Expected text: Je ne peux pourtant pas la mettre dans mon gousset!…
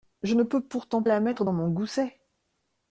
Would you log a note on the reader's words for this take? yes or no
yes